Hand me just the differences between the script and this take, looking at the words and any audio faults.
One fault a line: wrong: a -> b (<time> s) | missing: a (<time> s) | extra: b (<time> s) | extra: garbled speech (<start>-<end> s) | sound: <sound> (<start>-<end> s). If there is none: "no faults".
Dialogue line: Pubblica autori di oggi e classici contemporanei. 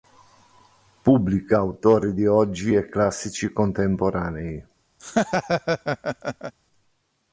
sound: laugh (5.0-6.5 s)